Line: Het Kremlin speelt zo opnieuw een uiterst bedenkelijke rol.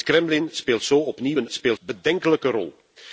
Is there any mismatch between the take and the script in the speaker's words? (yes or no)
yes